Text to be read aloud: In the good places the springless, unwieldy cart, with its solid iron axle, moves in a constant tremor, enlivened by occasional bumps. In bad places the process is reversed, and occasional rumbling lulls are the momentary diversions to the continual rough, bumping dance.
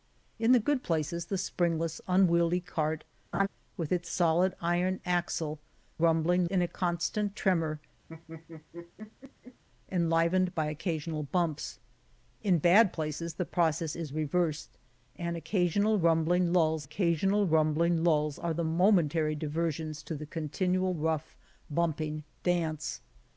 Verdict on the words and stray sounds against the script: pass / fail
fail